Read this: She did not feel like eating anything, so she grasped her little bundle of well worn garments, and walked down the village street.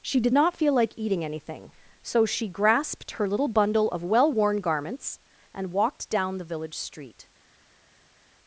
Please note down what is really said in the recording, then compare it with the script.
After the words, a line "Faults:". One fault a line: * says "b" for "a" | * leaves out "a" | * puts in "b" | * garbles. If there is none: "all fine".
She did not feel like eating anything, so she grasped her little bundle of well worn garments, and walked down the village street.
Faults:
all fine